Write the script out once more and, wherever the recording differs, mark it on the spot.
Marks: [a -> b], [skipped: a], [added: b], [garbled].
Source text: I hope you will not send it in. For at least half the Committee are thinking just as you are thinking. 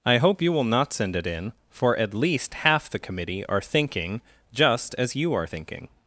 I hope you will not send it in. For at least half the Committee are thinking just as you are thinking.